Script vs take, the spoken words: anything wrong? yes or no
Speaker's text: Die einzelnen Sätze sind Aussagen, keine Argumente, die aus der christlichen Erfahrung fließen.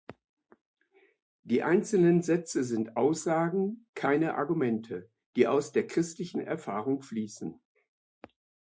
no